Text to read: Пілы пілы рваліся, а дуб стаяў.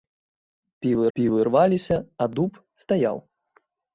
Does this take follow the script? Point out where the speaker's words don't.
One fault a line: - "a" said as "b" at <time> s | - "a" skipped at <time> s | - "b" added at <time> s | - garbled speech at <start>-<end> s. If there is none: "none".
none